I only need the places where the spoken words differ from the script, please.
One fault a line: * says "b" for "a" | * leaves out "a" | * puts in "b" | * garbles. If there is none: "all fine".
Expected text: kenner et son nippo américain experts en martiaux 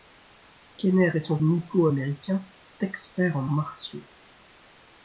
all fine